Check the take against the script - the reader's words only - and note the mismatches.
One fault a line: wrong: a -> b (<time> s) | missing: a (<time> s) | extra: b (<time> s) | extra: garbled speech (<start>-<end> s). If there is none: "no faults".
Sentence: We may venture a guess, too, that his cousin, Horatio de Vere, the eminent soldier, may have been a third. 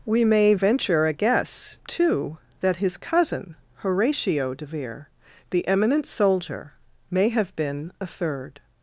no faults